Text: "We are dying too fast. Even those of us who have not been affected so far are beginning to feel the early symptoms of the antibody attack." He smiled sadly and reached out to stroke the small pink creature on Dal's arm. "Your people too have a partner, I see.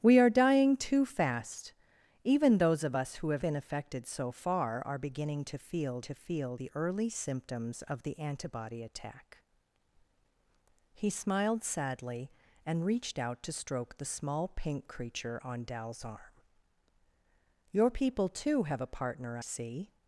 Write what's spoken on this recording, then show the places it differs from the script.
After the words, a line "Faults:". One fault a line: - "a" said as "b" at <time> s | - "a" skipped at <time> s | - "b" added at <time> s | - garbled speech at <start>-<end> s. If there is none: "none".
"We are dying too fast. Even those of us who have been affected so far are beginning to feel to feel the early symptoms of the antibody attack." He smiled sadly and reached out to stroke the small pink creature on Dal's arm. "Your people too have a partner, see.
Faults:
- "not" skipped at 3.5 s
- "to feel" added at 6.0 s
- "I" skipped at 19.4 s